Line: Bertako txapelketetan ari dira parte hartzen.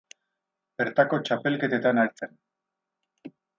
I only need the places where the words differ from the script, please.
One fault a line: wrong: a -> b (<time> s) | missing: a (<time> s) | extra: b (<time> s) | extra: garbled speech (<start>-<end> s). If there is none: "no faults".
missing: ari dira parte (2.0 s)